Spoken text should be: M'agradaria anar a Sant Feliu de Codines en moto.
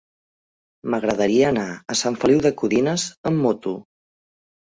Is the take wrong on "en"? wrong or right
wrong